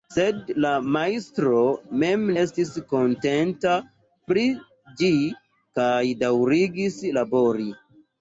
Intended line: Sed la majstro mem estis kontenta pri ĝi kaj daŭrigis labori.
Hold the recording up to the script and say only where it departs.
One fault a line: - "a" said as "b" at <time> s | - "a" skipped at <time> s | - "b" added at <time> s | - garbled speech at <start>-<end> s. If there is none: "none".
none